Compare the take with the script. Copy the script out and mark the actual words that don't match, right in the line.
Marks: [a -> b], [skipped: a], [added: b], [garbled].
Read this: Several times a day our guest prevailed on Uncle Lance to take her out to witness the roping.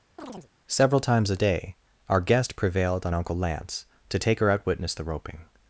Several times a day our guest prevailed on Uncle Lance to take her out [skipped: to] witness the roping.